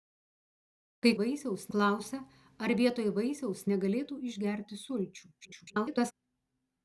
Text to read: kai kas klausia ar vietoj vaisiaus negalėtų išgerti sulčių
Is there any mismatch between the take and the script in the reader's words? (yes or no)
yes